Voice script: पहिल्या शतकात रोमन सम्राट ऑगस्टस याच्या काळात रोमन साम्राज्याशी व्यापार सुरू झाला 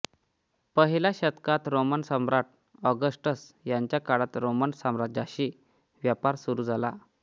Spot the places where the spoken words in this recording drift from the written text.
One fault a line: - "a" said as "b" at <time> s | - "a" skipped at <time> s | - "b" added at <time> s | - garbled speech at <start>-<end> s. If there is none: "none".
none